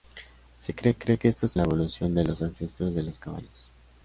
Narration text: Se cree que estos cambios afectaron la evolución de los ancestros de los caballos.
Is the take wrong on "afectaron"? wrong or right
wrong